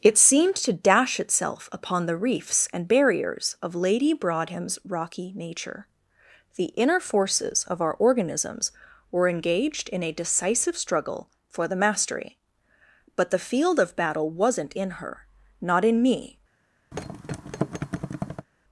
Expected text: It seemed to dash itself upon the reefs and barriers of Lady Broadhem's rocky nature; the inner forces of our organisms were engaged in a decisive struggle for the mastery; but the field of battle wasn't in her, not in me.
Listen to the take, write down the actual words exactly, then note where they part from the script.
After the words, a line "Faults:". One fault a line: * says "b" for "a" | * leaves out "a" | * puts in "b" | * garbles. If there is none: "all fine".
It seemed to dash itself upon the reefs and barriers of Lady Broadhem's rocky nature; the inner forces of our organisms were engaged in a decisive struggle for the mastery; but the field of battle wasn't in her, not in me.
Faults:
all fine